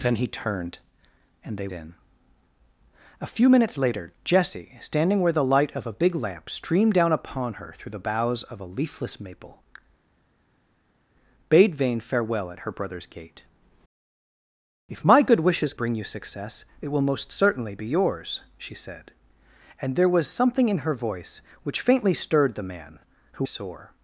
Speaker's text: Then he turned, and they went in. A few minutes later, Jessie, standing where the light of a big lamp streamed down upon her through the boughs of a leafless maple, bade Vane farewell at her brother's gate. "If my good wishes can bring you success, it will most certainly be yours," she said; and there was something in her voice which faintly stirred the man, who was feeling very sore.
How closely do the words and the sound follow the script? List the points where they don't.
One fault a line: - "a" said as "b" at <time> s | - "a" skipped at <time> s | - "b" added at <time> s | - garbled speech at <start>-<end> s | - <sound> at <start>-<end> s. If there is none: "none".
- "went" skipped at 1.7 s
- "can" skipped at 15.7 s
- "was feeling very" skipped at 23.5 s